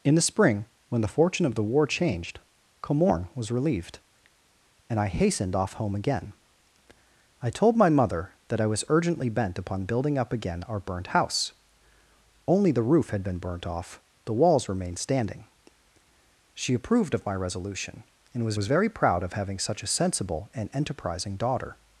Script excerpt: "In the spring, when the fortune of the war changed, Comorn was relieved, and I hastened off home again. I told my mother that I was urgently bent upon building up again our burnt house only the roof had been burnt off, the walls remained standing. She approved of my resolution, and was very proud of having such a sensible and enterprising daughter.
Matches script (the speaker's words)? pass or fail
fail